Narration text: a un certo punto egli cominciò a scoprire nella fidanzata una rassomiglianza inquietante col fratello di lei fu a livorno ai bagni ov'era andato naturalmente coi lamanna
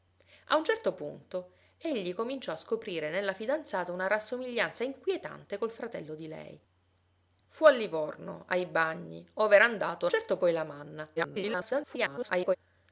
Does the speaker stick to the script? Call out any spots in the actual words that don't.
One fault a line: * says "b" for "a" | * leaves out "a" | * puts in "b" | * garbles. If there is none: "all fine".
* says "certo" for "naturalmente"
* garbles